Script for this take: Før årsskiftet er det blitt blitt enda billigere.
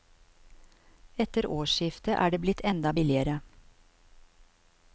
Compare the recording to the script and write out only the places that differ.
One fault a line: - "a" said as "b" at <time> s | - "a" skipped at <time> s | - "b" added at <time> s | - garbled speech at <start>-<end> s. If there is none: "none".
- "Før" said as "Etter" at 1.2 s
- "blitt" skipped at 2.6 s